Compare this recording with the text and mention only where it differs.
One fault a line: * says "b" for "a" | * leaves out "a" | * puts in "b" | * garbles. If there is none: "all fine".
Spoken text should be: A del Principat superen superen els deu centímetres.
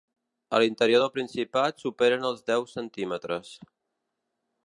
* puts in "l'interior"
* leaves out "superen"